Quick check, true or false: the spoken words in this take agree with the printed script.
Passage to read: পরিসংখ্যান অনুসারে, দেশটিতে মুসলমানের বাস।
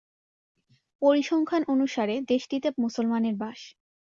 true